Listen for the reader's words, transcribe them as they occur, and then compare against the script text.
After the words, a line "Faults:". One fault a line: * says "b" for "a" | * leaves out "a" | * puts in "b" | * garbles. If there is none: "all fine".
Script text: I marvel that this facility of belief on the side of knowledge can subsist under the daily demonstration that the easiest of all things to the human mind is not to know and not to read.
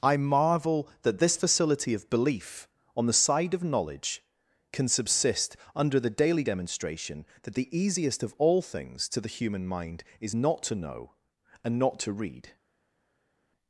I marvel that this facility of belief on the side of knowledge can subsist under the daily demonstration that the easiest of all things to the human mind is not to know and not to read.
Faults:
all fine